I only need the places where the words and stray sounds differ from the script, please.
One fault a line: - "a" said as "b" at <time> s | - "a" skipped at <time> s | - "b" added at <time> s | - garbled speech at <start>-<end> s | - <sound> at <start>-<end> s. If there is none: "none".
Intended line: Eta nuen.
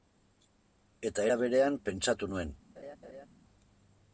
- "era berean pentsatu" added at 1.3 s
- laugh at 2.8-3.3 s